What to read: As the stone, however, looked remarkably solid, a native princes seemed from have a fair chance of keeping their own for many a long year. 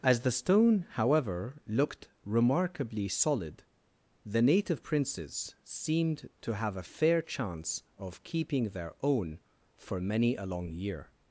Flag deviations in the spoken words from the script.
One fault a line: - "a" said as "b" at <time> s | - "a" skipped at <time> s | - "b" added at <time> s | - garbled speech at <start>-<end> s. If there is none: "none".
- "a" said as "the" at 4.2 s
- "from" said as "to" at 6.4 s